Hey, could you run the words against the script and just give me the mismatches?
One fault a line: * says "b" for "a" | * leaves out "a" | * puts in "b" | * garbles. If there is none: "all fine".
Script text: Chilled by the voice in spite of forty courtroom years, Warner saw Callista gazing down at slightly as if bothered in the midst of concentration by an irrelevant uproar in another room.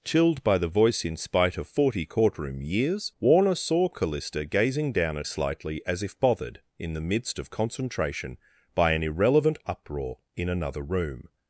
all fine